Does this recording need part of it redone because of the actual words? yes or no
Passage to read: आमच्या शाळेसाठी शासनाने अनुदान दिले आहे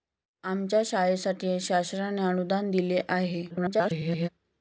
yes